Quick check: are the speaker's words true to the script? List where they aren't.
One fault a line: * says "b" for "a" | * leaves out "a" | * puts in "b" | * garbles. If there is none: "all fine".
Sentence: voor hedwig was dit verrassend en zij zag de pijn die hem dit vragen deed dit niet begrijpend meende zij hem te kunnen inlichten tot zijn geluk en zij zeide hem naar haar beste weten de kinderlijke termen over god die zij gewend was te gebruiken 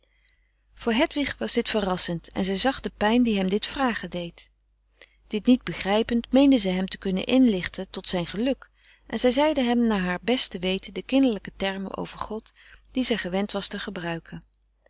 all fine